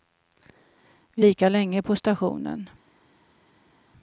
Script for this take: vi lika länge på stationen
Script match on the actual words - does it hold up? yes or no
yes